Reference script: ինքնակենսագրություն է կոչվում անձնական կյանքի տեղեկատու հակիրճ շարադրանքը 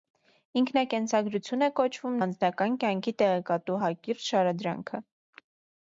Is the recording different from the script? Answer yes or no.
no